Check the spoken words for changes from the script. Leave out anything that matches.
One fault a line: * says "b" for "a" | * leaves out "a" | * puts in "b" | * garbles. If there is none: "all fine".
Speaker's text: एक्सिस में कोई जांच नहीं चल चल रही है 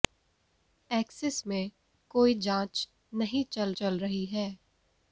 all fine